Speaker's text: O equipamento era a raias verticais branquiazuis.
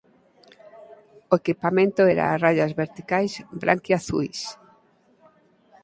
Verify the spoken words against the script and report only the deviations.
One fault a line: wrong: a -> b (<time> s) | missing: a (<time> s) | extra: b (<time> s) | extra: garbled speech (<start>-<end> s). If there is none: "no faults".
no faults